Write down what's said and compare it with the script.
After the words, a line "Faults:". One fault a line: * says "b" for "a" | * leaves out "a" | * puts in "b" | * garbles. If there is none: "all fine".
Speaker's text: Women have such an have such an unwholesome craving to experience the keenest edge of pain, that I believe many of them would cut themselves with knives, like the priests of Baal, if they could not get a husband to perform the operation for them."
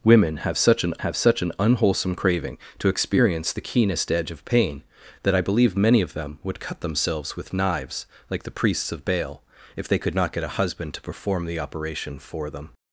Women have such an have such an unwholesome craving to experience the keenest edge of pain, that I believe many of them would cut themselves with knives, like the priests of Baal, if they could not get a husband to perform the operation for them."
Faults:
all fine